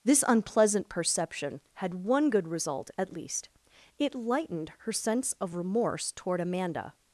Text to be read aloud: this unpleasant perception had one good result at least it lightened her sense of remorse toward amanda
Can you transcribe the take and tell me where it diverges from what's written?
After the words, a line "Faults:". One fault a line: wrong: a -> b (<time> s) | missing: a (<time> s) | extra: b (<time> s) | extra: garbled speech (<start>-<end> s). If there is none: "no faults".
this unpleasant perception had one good result at least it lightened her sense of remorse toward amanda
Faults:
no faults